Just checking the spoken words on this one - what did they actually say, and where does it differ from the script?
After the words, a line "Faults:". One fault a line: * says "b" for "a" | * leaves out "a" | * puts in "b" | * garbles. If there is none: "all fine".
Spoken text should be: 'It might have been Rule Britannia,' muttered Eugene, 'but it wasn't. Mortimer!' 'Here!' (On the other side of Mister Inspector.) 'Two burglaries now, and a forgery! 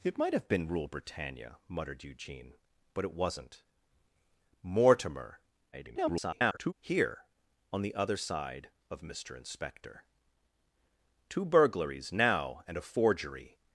'It might have been Rule Britannia,' muttered Eugene, 'but it wasn't. Mortimer!' [garbled] 'Here!' (On the other side of Mister Inspector.) 'Two burglaries now, and a forgery!
Faults:
* garbles